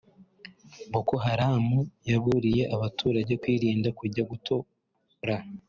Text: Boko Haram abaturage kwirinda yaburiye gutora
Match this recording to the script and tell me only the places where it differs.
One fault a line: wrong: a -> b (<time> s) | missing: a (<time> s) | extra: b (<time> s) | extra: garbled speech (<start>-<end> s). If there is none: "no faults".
extra: yaburiye (2.1 s)
wrong: yaburiye -> kujya (4.0 s)